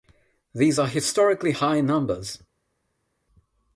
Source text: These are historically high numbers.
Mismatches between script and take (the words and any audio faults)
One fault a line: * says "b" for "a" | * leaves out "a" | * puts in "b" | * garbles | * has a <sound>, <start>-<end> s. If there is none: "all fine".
all fine